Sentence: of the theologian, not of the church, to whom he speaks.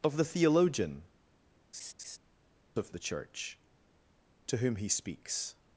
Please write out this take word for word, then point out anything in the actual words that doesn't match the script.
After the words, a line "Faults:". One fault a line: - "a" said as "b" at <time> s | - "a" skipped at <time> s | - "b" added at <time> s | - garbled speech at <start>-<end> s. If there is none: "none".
of the theologian, of the church, to whom he speaks.
Faults:
- "not" skipped at 1.1 s